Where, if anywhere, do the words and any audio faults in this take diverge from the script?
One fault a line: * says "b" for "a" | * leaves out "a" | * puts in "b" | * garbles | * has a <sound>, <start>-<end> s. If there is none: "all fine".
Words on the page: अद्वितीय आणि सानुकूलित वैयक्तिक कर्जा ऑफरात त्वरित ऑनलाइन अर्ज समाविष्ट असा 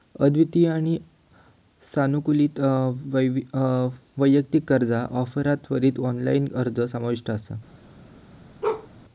* has a bark, 8.6-8.9 s